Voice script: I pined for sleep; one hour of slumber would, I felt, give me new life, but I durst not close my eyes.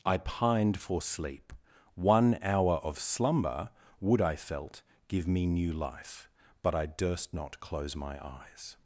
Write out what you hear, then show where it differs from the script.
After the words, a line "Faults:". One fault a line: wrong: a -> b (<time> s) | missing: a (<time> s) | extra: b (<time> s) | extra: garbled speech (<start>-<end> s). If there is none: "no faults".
I pined for sleep; one hour of slumber would, I felt, give me new life, but I durst not close my eyes.
Faults:
no faults